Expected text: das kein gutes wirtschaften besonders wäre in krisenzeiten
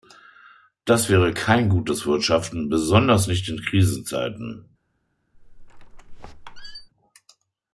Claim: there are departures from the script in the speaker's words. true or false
true